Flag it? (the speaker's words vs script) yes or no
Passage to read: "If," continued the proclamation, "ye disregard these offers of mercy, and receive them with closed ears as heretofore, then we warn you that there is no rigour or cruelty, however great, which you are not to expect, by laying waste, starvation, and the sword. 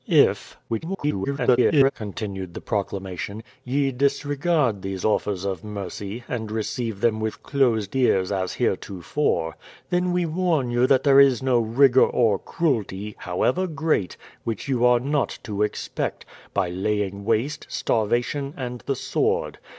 yes